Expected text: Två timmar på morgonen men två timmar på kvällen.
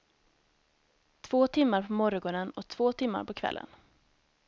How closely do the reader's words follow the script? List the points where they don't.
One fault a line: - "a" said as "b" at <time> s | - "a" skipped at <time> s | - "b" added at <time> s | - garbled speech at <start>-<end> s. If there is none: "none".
- "men" said as "och" at 2.5 s